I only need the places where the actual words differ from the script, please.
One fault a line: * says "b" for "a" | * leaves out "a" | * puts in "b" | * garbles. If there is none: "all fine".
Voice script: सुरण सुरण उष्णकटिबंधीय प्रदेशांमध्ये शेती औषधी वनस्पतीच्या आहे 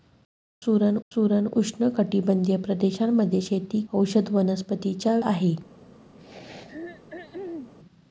all fine